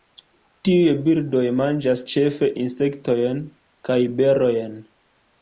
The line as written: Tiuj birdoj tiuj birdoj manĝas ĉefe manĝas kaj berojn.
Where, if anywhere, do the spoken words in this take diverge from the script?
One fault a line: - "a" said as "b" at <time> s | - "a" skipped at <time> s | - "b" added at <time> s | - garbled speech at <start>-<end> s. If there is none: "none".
- "tiuj birdoj" skipped at 1.4 s
- "manĝas" said as "insektojn" at 2.6 s